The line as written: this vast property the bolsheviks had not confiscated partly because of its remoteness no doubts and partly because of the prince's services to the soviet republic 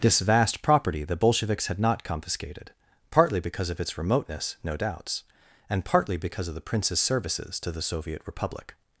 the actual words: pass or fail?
pass